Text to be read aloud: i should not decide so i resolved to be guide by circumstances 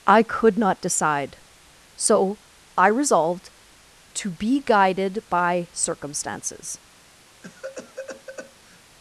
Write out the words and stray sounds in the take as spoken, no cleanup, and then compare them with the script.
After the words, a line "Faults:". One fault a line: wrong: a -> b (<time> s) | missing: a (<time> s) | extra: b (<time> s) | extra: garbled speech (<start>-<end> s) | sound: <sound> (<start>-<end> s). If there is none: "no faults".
i could not decide so i resolved to be guided by circumstances
Faults:
wrong: should -> could (0.2 s)
wrong: guide -> guided (4.6 s)
sound: cough (7.4-8.8 s)